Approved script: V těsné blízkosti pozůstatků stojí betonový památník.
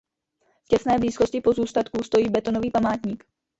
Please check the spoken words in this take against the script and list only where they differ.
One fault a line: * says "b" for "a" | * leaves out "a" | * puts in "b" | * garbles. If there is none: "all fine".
all fine